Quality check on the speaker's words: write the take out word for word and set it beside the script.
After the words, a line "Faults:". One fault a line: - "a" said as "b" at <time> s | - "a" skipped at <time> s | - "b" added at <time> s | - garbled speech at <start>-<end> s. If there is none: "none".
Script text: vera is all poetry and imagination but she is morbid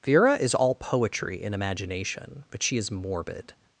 vera is all poetry and imagination but she is morbid
Faults:
none